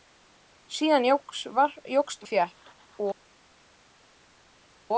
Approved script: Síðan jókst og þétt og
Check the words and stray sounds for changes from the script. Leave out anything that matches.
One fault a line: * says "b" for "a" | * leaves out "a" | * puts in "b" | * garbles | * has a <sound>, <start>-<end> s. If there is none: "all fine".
all fine